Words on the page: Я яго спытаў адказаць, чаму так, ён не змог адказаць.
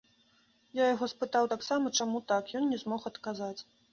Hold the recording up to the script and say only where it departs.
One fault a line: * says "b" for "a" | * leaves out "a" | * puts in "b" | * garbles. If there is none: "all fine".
* says "таксама" for "адказаць"